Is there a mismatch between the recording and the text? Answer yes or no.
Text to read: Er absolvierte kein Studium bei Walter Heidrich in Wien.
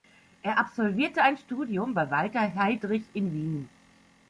yes